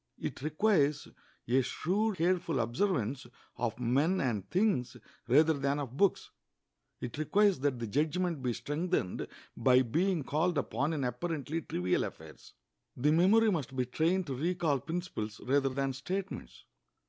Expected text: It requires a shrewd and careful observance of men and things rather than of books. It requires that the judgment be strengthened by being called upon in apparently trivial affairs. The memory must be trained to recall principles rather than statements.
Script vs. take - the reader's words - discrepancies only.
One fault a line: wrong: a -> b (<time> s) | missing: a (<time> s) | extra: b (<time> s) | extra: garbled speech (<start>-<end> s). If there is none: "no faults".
missing: and (2.2 s)